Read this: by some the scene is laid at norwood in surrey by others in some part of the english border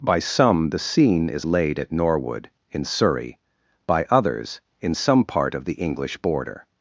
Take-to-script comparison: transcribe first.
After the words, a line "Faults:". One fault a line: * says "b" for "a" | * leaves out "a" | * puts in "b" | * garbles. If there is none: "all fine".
by some the scene is laid at norwood in surrey by others in some part of the english border
Faults:
all fine